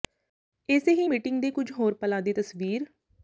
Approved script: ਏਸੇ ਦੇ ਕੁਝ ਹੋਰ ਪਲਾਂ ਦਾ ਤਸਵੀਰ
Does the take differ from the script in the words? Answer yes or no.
yes